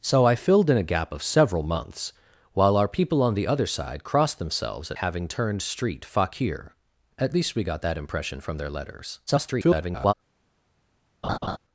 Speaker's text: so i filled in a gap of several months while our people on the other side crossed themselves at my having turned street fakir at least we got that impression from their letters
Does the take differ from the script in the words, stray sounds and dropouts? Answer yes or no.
yes